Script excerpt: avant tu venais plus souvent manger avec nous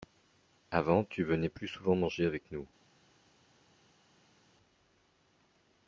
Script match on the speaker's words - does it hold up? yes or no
yes